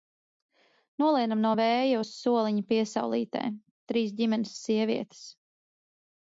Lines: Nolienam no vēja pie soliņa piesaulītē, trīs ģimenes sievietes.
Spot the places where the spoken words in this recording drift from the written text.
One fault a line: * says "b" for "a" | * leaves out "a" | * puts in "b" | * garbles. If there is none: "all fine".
* says "uz" for "pie"